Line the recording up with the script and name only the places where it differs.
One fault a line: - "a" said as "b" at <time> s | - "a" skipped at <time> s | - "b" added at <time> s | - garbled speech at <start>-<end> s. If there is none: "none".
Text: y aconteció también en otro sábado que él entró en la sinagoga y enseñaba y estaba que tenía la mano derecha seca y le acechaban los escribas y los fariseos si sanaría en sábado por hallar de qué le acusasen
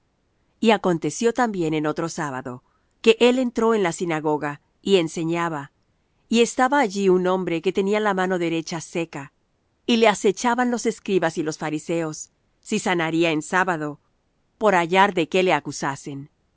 - "allí un hombre" added at 6.8 s